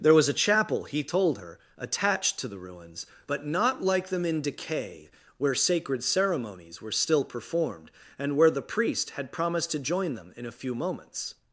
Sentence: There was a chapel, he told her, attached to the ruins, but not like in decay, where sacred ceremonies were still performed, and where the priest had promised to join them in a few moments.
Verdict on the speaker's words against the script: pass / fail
fail